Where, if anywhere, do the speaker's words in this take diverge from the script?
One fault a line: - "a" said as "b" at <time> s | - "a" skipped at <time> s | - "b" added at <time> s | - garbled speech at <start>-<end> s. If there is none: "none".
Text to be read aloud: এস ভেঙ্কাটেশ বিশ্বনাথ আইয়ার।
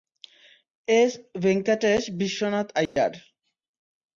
none